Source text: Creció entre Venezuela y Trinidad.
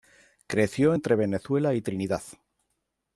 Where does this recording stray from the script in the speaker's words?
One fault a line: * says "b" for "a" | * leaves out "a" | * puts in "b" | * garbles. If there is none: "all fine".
all fine